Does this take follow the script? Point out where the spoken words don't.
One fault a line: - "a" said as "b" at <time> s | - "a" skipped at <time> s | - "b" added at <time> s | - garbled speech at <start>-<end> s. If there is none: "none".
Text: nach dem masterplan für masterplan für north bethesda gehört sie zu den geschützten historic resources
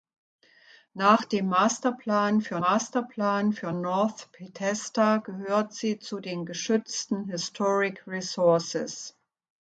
none